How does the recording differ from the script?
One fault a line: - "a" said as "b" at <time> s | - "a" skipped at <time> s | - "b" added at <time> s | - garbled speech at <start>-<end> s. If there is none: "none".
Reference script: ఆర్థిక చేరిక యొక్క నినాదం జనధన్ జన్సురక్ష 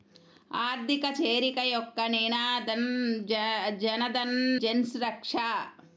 none